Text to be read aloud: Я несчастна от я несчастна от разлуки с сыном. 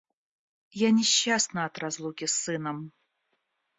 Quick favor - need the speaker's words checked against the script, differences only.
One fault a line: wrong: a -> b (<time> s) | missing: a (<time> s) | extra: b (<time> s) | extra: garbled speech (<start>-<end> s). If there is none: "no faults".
missing: я несчастна от (1.8 s)